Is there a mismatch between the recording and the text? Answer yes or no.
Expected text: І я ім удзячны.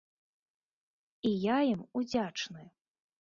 no